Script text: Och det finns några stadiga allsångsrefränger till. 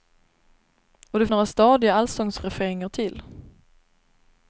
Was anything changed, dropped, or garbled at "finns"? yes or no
yes